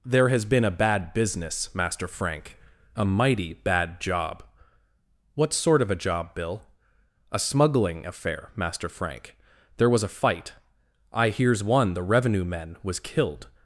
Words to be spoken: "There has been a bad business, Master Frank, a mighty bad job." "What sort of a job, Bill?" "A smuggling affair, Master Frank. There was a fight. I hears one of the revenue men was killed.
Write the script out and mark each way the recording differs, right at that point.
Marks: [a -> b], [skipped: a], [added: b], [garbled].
"There has been a bad business, Master Frank, a mighty bad job." "What sort of a job, Bill?" "A smuggling affair, Master Frank. There was a fight. I hears one [skipped: of] the revenue men was killed.